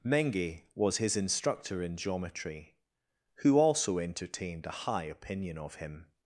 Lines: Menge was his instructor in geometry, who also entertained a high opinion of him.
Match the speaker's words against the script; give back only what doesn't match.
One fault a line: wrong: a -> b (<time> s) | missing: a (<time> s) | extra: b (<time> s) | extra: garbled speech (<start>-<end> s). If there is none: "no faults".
no faults